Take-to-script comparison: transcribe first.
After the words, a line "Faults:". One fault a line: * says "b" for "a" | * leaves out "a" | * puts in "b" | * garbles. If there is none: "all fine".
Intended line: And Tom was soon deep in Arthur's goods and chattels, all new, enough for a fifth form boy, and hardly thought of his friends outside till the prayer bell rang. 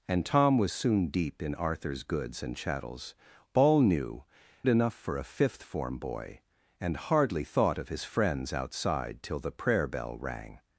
And Tom was soon deep in Arthur's goods and chattels, all new, enough for a fifth form boy, and hardly thought of his friends outside till the prayer bell rang.
Faults:
all fine